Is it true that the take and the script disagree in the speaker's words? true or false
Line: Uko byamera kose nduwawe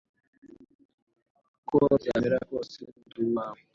false